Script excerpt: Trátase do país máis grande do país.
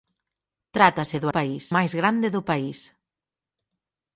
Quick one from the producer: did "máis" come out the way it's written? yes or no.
yes